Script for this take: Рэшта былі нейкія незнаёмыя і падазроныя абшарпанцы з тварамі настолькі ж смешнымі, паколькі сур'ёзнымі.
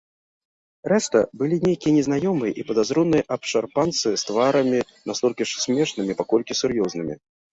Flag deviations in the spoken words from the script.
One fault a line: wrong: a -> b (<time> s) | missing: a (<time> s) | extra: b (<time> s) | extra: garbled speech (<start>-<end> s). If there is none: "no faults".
no faults